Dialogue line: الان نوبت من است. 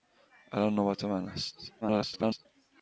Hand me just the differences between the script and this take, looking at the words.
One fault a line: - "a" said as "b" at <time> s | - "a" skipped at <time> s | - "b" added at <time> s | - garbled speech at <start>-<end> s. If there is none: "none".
- garbled speech at 1.8-2.5 s